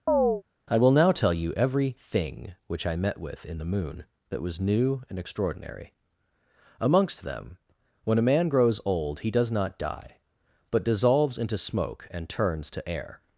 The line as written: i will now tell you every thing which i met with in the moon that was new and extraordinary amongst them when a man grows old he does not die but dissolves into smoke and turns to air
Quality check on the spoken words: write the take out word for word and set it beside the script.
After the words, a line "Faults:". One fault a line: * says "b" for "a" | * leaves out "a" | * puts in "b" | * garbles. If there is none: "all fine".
i will now tell you every thing which i met with in the moon that was new and extraordinary amongst them when a man grows old he does not die but dissolves into smoke and turns to air
Faults:
all fine